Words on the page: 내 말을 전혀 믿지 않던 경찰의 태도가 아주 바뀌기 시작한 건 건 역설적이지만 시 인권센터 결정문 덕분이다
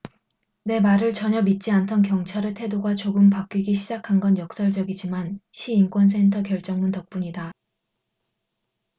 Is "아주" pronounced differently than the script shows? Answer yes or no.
yes